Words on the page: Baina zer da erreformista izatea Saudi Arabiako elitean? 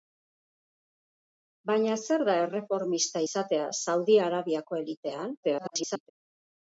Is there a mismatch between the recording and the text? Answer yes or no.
yes